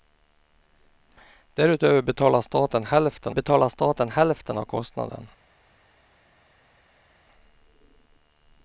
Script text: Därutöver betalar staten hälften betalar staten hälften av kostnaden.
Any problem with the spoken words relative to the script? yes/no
no